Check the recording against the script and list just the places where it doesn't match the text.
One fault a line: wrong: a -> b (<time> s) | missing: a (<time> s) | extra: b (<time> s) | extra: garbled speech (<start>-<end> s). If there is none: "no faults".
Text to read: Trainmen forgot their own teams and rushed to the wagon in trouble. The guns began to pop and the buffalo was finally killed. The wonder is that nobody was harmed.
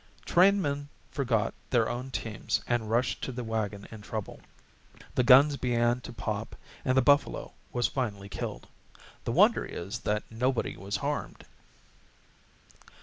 no faults